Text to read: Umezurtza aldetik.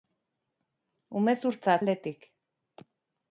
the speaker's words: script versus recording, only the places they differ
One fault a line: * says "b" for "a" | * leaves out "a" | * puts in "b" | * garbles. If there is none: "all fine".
all fine